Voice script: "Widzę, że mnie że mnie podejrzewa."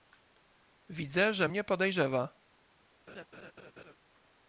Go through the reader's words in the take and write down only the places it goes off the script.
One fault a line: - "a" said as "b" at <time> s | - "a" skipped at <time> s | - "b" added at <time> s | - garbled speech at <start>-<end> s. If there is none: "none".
- "że mnie" skipped at 1.6 s